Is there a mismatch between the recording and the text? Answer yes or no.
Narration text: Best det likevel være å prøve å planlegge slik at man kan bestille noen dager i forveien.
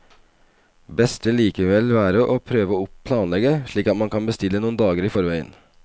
no